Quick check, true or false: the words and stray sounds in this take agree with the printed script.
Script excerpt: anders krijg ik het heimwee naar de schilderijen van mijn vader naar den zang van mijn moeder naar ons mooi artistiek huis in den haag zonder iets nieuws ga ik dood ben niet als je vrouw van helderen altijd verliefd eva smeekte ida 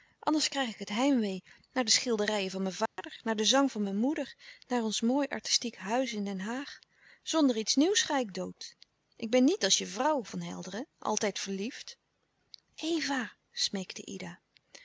false